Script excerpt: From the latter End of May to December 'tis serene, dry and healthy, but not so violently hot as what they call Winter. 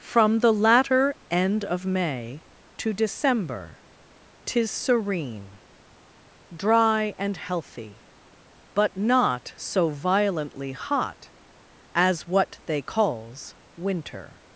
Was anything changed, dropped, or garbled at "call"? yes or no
yes